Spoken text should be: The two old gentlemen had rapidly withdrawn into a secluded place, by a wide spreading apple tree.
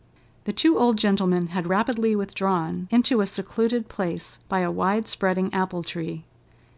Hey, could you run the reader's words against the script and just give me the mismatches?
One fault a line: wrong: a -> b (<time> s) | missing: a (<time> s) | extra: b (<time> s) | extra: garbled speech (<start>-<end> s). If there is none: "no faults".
no faults